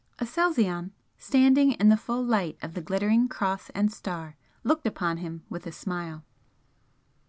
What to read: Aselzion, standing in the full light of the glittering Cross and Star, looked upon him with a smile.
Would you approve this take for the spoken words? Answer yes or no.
yes